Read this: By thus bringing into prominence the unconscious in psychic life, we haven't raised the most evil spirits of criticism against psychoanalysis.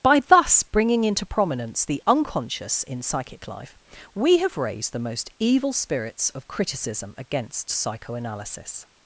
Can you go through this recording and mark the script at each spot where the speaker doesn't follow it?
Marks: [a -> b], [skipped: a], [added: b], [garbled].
By thus bringing into prominence the unconscious in psychic life, we [haven't -> have] raised the most evil spirits of criticism against psychoanalysis.